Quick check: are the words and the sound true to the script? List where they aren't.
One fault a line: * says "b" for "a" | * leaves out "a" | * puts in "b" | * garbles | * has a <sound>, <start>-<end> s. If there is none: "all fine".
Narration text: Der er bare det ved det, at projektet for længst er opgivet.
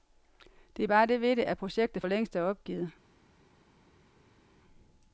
all fine